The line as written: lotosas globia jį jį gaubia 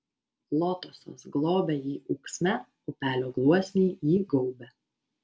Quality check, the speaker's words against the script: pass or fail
fail